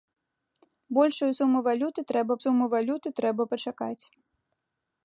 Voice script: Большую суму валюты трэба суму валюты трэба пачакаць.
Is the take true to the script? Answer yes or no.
yes